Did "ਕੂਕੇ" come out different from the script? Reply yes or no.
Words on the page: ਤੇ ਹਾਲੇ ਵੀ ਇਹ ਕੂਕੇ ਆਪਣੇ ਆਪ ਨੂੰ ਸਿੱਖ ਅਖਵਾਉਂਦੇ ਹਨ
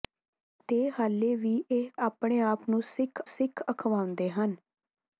yes